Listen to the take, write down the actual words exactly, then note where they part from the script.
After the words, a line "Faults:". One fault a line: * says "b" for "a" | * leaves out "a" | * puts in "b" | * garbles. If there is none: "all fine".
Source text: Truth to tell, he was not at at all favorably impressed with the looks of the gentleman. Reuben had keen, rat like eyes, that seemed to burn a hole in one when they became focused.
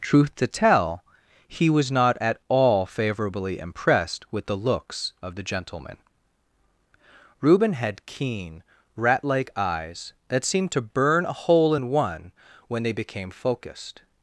Truth to tell, he was not at all favorably impressed with the looks of the gentleman. Reuben had keen, rat like eyes, that seemed to burn a hole in one when they became focused.
Faults:
* leaves out "at"